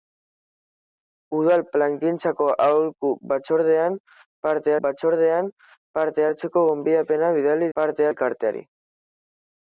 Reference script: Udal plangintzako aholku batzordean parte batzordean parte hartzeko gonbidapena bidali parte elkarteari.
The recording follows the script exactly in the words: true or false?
true